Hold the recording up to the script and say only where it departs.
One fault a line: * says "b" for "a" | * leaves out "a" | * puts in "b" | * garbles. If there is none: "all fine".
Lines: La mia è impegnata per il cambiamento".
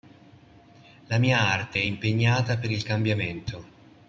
* puts in "arte"